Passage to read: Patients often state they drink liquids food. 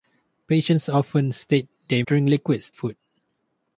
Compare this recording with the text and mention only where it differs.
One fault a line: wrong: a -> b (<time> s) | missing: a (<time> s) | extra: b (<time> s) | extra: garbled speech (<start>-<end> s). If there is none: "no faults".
no faults